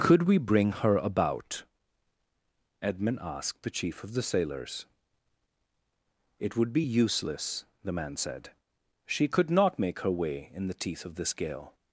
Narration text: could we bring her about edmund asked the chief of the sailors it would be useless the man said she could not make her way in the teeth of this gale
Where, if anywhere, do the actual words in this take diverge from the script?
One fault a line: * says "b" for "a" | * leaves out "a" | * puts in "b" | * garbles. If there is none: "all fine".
all fine